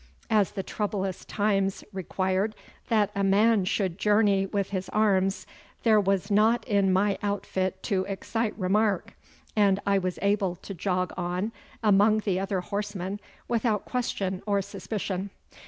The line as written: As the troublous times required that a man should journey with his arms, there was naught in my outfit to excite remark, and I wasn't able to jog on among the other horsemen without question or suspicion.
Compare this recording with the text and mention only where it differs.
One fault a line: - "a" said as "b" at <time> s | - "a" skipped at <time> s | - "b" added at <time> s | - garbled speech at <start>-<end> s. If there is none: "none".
- "wasn't" said as "was" at 10.0 s